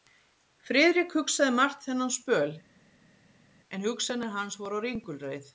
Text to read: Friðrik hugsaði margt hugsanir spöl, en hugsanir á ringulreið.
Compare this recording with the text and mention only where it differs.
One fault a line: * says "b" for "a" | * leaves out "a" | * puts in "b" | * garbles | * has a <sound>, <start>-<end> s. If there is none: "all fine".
* says "þennan" for "hugsanir"
* puts in "hans voru"